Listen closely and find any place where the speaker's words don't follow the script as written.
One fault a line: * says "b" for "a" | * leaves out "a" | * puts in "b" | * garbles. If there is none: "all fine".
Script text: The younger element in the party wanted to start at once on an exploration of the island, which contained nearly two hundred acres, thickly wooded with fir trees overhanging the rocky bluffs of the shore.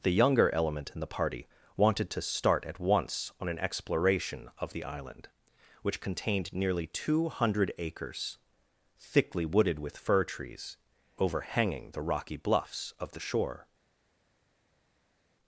all fine